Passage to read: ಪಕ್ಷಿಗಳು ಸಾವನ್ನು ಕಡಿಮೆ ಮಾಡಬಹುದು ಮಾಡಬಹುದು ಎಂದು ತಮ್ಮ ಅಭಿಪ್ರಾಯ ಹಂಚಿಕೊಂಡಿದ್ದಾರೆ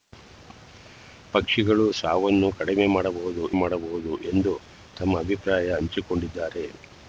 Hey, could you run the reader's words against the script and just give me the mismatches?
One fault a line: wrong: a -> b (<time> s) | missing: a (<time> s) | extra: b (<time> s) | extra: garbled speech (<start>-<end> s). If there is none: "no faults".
no faults